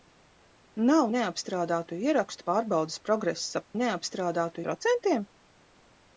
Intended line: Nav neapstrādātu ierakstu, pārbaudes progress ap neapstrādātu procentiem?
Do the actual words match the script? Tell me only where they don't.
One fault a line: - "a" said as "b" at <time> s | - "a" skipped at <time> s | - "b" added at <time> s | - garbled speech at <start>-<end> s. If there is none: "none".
none